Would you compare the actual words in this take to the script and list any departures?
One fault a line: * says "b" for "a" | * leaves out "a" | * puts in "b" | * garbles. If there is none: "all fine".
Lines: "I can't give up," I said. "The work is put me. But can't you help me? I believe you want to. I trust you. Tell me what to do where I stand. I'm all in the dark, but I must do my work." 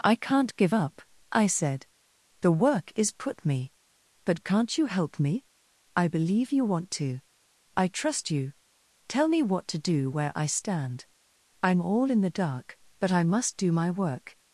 all fine